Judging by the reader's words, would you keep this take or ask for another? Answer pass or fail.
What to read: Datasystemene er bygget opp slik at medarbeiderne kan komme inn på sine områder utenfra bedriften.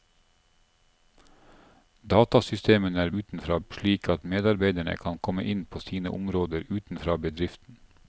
fail